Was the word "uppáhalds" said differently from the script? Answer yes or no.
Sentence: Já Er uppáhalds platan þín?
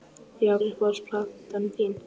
no